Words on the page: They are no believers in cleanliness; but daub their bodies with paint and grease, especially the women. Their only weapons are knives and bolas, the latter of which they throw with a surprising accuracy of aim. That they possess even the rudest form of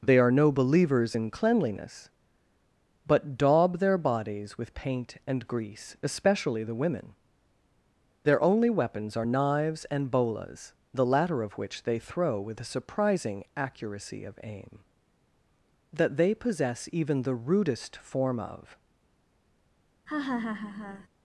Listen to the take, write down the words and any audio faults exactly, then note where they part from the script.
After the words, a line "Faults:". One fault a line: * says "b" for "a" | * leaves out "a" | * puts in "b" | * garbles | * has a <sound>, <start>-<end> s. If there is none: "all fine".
They are no believers in cleanliness; but daub their bodies with paint and grease, especially the women. Their only weapons are knives and bolas, the latter of which they throw with a surprising accuracy of aim. That they possess even the rudest form of
Faults:
* has a laugh, 20.1-21.1 s